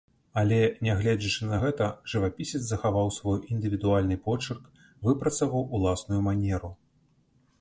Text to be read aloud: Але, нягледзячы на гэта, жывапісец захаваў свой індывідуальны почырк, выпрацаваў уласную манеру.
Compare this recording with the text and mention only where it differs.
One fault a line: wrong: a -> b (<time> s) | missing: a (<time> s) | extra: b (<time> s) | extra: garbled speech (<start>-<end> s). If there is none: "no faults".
no faults